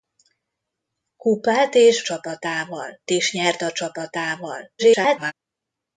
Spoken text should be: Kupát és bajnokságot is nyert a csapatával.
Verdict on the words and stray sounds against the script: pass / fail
fail